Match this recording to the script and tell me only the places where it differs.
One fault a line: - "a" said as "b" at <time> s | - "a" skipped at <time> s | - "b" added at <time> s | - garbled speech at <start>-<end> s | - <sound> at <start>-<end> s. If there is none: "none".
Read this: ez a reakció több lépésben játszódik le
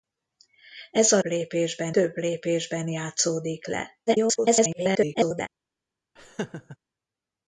- "reakció" said as "lépésben" at 1.2 s
- garbled speech at 4.1-5.5 s
- laugh at 6.2-6.8 s